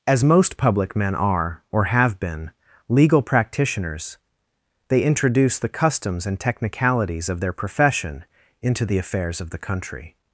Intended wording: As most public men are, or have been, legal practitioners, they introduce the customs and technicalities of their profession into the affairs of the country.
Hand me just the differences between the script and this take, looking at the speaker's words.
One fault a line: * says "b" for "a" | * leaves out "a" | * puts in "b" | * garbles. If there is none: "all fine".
all fine